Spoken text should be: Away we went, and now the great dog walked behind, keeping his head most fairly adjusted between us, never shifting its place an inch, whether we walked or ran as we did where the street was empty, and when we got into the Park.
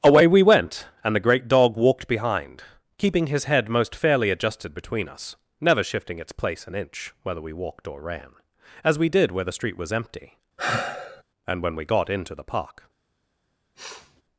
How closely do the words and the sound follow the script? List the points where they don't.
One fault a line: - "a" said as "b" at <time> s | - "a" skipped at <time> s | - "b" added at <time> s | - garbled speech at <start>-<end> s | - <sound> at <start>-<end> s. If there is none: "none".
- "now" skipped at 1.1 s
- sigh at 10.6-11.2 s
- sniff at 13.8-14.2 s